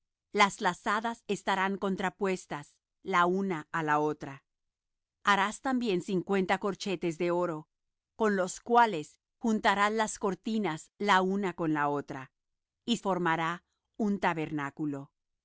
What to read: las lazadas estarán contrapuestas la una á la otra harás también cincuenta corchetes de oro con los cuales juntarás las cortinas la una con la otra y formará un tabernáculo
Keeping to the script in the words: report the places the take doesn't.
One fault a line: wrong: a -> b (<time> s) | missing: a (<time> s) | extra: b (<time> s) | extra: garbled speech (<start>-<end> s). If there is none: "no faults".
no faults